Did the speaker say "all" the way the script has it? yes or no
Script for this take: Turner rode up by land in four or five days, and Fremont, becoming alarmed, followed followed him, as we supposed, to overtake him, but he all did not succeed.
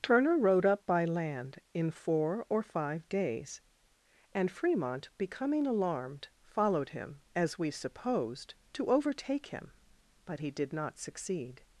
no